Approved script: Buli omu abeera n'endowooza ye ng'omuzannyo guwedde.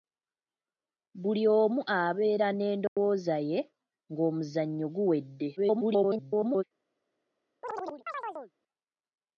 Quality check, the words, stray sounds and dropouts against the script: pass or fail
fail